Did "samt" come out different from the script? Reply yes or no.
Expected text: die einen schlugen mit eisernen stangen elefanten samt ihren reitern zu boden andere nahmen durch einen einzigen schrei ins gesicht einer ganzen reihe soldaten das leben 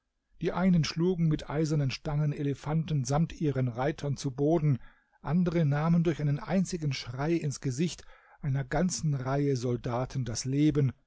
no